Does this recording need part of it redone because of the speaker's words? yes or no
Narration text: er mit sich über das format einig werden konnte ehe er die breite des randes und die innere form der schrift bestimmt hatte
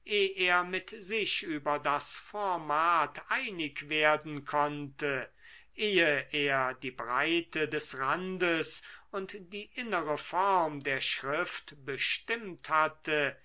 no